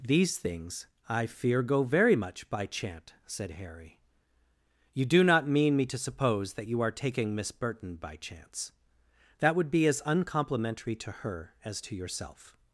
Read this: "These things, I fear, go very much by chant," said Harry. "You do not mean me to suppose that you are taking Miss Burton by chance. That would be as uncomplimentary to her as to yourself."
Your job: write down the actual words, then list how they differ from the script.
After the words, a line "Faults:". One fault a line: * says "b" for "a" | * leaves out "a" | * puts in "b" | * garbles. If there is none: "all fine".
"These things, I fear, go very much by chant," said Harry. "You do not mean me to suppose that you are taking Miss Burton by chance. That would be as uncomplimentary to her as to yourself."
Faults:
all fine